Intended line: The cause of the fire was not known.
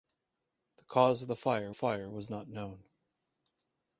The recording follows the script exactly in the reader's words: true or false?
false